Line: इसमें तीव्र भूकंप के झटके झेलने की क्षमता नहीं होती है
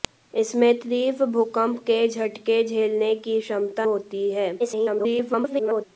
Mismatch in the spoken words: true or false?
true